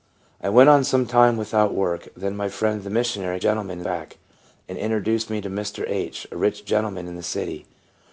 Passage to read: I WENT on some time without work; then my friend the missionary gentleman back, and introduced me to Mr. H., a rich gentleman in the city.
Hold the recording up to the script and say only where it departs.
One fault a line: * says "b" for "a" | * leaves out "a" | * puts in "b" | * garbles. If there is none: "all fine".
all fine